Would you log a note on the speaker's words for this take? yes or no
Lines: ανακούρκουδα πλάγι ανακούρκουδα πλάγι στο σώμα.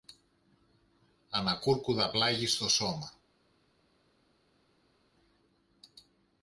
yes